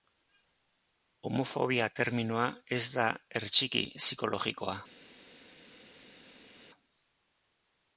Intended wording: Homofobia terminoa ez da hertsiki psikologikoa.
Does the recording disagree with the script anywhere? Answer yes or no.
no